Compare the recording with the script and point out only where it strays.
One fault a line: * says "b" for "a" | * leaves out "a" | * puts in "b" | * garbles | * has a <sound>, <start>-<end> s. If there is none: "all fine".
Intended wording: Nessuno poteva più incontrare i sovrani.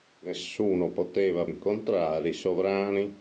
* leaves out "più"